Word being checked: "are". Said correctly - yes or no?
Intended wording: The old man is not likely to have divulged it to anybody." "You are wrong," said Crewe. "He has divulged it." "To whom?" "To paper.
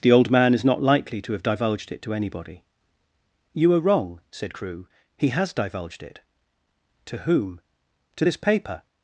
yes